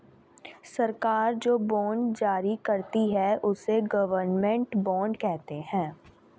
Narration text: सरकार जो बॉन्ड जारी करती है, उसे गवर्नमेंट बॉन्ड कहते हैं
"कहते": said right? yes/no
yes